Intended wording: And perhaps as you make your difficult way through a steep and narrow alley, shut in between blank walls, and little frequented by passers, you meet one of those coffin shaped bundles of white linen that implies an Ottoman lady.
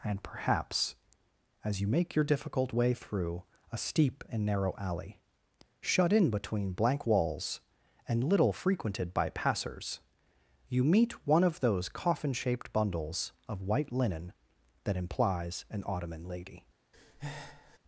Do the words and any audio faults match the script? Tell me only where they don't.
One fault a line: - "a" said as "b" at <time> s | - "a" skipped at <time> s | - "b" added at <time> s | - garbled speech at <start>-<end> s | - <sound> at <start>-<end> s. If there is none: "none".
- breath at 16.9-17.8 s